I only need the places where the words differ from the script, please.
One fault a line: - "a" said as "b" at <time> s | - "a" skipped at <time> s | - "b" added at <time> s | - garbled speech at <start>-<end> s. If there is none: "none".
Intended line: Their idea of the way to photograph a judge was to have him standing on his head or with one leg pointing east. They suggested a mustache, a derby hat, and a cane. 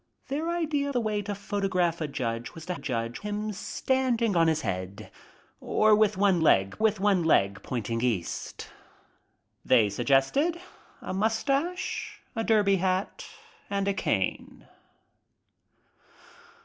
- "of" skipped at 0.9 s
- "have" said as "judge" at 2.8 s
- "with one leg" added at 6.8 s